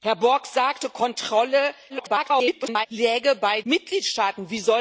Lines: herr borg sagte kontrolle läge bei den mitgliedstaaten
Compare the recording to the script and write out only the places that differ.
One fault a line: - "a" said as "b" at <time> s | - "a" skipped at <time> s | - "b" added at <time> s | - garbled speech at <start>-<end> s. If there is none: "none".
- garbled speech at 1.9-2.9 s
- "den" skipped at 3.6 s